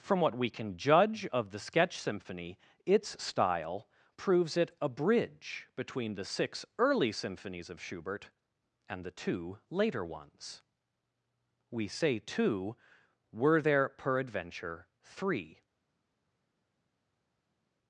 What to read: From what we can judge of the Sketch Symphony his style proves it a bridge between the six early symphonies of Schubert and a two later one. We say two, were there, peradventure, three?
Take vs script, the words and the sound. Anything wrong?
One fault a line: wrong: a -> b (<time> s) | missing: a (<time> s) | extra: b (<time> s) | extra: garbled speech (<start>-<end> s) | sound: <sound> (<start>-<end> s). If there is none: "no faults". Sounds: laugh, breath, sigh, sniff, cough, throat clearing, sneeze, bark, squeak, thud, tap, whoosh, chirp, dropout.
wrong: his -> its (2.9 s)
wrong: a -> the (9.0 s)
wrong: one -> ones (10.0 s)